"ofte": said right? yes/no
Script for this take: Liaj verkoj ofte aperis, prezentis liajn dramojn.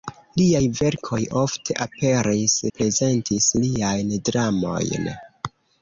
yes